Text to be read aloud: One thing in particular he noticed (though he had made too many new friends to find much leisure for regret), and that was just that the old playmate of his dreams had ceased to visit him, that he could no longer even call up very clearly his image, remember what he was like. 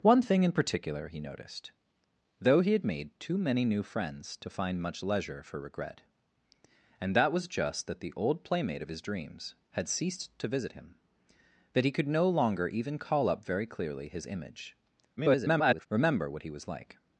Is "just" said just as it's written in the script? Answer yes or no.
yes